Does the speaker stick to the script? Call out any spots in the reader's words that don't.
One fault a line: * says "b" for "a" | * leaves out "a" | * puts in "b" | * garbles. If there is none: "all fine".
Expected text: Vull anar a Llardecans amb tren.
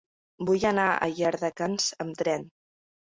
all fine